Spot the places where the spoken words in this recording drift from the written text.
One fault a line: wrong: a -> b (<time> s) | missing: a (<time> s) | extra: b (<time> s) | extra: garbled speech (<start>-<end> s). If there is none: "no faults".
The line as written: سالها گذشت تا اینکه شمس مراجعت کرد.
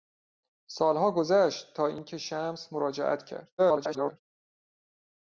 extra: garbled speech (3.6-4.2 s)